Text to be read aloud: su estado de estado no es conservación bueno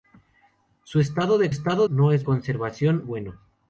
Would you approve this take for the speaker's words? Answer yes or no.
yes